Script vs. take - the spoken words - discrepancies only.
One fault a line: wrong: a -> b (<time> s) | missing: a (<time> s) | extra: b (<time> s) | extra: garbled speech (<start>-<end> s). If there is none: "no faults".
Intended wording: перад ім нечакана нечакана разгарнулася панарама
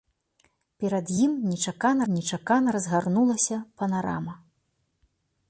no faults